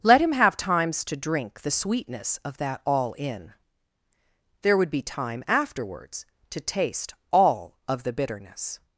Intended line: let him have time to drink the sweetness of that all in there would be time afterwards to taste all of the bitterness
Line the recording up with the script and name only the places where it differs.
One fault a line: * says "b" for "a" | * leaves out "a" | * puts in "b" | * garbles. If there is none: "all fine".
* says "times" for "time"